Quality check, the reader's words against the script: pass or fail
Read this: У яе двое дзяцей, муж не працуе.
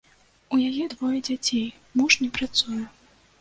pass